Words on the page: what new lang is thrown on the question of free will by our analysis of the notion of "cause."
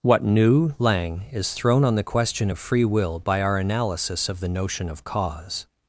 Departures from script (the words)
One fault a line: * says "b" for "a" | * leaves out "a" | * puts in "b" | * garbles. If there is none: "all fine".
all fine